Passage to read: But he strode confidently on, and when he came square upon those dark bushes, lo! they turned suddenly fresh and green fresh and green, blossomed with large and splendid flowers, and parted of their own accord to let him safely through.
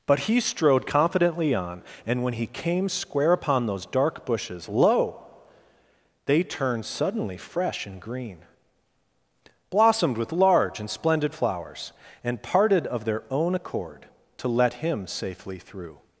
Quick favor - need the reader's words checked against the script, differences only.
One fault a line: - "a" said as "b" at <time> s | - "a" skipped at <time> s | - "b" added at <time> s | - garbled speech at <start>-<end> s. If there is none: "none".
- "fresh and green" skipped at 8.4 s